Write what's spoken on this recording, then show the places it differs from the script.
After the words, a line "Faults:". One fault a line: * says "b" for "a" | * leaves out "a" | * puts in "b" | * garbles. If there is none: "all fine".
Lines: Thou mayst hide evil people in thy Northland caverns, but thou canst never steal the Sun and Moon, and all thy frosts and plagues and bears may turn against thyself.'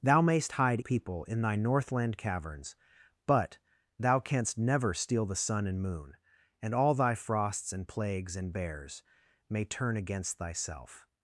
Thou mayst hide people in thy Northland caverns, but thou canst never steal the Sun and Moon, and all thy frosts and plagues and bears may turn against thyself.'
Faults:
* leaves out "evil"